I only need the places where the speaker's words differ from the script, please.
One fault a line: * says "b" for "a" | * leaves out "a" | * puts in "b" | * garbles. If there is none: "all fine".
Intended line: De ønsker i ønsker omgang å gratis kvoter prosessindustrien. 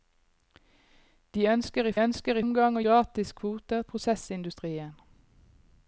all fine